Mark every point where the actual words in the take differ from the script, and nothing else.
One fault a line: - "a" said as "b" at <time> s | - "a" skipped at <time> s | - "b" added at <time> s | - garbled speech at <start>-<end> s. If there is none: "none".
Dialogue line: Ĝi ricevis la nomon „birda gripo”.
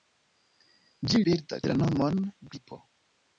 - "ricevis" said as "birda" at 1.3 s
- "birda" skipped at 2.2 s